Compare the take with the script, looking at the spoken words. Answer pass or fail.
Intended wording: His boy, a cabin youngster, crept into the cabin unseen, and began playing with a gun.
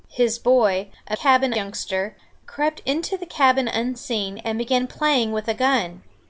pass